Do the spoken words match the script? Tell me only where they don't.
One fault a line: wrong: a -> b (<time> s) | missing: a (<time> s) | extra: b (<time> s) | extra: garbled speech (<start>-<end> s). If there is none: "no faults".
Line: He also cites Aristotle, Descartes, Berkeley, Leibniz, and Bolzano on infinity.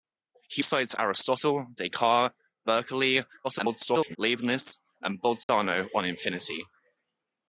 missing: also (0.6 s)
extra: garbled speech (3.4-4.2 s)